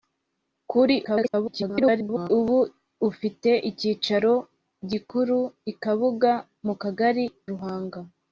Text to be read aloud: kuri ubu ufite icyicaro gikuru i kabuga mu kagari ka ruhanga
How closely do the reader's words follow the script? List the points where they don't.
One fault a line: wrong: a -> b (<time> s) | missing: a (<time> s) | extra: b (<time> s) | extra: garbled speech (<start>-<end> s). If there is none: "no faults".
extra: garbled speech (1.0-2.3 s)
missing: ka (7.2 s)